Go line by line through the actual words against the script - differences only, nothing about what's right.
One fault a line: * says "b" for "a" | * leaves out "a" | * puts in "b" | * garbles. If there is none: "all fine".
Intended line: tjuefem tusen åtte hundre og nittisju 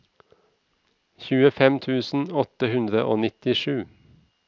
all fine